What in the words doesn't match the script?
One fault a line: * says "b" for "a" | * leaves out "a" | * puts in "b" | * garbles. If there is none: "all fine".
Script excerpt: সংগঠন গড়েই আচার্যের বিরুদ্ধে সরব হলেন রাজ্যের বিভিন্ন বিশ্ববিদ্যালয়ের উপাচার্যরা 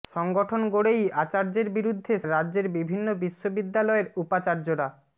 * leaves out "সরব হলেন"